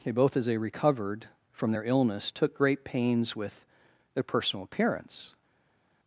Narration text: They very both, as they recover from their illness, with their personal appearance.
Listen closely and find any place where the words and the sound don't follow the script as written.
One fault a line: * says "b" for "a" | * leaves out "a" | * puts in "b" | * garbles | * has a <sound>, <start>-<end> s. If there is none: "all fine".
* leaves out "very"
* says "recovered" for "recover"
* puts in "took great pains"